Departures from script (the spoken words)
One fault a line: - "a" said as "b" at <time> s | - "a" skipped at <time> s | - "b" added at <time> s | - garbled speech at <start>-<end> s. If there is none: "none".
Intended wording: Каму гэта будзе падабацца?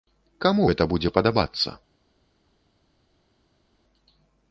none